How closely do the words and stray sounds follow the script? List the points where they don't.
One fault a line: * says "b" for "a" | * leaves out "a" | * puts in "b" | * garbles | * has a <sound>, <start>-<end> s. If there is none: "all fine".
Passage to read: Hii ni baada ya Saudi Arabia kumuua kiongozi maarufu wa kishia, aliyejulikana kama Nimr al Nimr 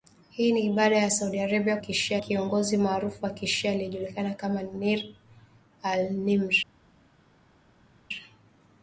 * says "kishia" for "kumuua"